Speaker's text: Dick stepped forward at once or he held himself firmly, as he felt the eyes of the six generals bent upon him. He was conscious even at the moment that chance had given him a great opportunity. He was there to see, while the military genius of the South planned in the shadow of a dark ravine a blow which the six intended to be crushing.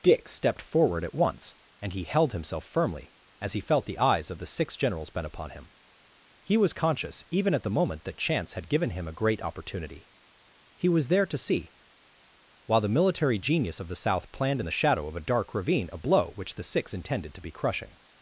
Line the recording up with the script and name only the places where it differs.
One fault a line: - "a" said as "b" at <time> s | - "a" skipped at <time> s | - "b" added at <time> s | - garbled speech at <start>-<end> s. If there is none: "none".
- "or" said as "and" at 1.8 s